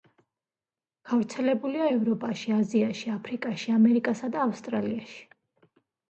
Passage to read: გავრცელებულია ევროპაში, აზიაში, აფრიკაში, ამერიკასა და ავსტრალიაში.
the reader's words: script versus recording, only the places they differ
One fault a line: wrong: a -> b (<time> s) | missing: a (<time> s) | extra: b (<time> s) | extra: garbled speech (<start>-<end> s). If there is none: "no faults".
no faults